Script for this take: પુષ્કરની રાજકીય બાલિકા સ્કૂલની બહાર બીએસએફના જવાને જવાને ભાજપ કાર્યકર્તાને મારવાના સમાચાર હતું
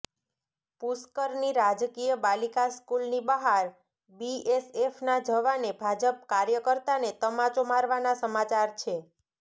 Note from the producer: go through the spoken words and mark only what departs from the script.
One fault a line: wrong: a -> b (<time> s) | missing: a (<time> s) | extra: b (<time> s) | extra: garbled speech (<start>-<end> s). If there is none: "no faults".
missing: જવાને (5.7 s)
extra: તમાચો (7.2 s)
wrong: હતું -> છે (8.8 s)